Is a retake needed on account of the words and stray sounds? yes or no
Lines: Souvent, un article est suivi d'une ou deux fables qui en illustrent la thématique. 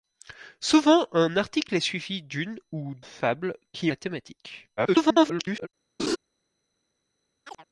yes